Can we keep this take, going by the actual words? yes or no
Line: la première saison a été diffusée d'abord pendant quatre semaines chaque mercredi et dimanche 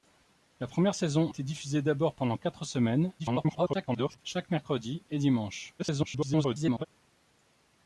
no